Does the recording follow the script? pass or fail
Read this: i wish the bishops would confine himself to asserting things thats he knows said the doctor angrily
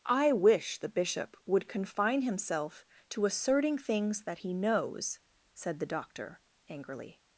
fail